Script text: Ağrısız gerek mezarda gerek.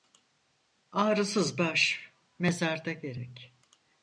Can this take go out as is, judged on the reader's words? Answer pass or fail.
fail